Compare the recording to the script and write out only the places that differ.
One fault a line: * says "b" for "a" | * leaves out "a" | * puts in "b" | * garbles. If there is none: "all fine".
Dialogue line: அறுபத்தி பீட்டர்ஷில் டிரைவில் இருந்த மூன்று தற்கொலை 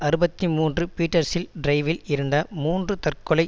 * puts in "மூன்று"